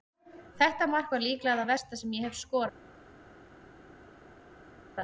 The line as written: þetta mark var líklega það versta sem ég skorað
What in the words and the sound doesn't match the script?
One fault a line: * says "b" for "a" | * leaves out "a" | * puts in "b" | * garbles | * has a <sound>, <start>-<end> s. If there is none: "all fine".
* puts in "hef"